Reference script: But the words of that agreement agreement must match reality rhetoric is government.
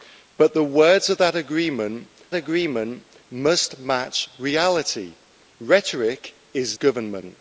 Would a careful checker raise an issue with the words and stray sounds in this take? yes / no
no